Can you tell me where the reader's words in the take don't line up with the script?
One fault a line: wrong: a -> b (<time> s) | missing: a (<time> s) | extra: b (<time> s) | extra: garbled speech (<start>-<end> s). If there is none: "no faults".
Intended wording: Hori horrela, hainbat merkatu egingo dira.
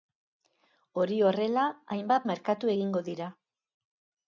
no faults